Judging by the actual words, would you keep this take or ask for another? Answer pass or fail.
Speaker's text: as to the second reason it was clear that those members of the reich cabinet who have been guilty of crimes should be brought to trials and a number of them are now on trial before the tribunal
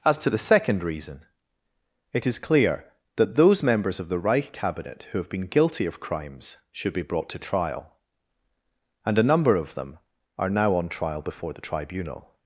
fail